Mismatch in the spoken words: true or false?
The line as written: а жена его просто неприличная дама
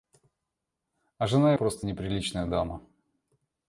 true